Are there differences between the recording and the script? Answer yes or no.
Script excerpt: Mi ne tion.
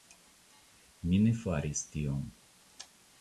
yes